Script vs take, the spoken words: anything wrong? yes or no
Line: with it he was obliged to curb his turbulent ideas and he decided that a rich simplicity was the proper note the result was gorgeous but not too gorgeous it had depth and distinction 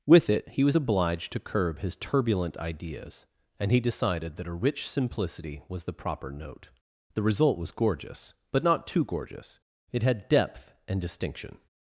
no